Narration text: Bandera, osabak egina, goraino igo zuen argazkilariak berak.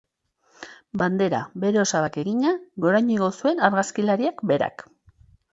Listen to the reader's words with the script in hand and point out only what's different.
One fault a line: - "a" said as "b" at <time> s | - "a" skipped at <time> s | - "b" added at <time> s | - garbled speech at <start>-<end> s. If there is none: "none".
- "bere" added at 1.6 s